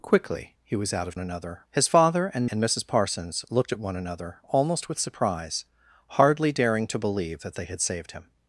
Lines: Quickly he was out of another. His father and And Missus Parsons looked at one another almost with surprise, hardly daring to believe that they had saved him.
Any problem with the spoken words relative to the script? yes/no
no